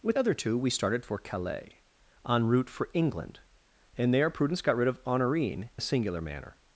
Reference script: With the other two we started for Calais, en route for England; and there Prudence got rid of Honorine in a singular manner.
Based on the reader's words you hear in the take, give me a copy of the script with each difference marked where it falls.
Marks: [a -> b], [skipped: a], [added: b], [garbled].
With [skipped: the] other two we started for Calais, en route for England; and there Prudence got rid of Honorine [skipped: in] a singular manner.